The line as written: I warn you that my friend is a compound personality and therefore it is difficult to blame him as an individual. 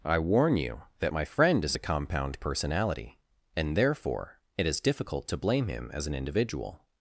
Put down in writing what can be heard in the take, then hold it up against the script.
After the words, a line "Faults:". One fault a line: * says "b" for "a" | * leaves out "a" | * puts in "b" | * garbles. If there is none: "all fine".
I warn you that my friend is a compound personality and therefore it is difficult to blame him as an individual.
Faults:
all fine